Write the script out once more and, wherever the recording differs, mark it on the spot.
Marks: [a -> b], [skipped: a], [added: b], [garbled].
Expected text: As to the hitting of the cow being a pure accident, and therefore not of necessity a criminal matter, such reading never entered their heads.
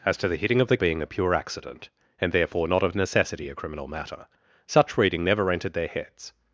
As to the hitting of the [skipped: cow] being a pure accident, and therefore not of necessity a criminal matter, such reading never entered their heads.